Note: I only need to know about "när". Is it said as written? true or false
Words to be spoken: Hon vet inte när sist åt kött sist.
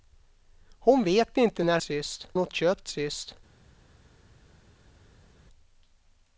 true